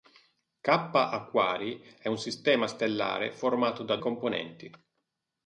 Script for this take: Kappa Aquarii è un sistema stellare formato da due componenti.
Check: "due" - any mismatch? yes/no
yes